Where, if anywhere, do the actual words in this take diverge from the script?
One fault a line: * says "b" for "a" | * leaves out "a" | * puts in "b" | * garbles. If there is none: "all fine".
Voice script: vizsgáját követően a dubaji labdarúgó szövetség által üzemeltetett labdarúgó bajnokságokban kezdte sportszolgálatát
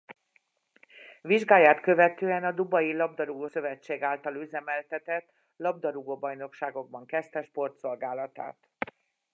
all fine